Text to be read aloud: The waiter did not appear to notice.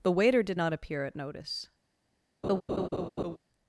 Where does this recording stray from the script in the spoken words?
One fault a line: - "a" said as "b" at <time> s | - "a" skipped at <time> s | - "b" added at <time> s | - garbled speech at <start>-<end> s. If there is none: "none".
- "to" said as "at" at 1.0 s